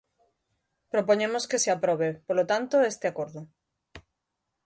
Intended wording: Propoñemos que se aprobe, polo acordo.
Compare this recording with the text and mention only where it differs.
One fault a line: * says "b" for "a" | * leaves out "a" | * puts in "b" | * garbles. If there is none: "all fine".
* puts in "tanto este"